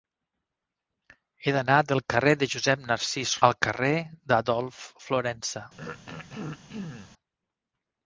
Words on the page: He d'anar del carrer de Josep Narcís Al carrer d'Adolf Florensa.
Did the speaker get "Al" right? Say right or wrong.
right